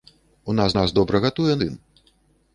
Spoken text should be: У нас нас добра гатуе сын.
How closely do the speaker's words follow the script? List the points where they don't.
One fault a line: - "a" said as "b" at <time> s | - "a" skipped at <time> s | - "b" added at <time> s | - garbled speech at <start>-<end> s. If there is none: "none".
none